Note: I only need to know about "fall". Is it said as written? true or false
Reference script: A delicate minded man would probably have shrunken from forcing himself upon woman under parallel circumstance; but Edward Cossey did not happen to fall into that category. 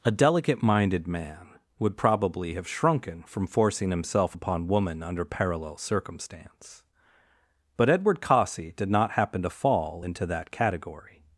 true